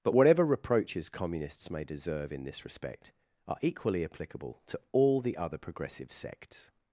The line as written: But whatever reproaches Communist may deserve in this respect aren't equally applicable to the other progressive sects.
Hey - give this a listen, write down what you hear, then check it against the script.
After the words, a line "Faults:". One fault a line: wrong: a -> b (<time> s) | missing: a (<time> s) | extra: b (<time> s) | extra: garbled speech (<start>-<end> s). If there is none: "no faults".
But whatever reproaches Communists may deserve in this respect are equally applicable to all the other progressive sects.
Faults:
wrong: Communist -> Communists (1.1 s)
wrong: aren't -> are (3.5 s)
extra: all (4.9 s)